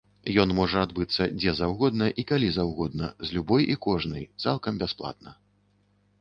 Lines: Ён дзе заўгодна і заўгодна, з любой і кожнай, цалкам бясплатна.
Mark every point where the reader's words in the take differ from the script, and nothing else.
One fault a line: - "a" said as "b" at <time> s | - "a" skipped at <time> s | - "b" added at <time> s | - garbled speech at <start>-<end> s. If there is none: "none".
- "можа адбыцца" added at 0.6 s
- "калі" added at 2.3 s